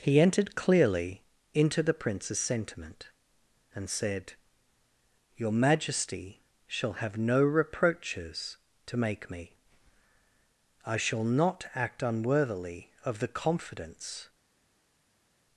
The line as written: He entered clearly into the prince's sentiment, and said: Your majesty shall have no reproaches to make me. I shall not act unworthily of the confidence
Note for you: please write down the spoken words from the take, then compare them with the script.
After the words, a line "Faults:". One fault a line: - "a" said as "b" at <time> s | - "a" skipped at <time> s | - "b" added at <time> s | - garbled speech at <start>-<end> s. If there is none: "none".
He entered clearly into the prince's sentiment, and said: Your majesty shall have no reproaches to make me. I shall not act unworthily of the confidence
Faults:
none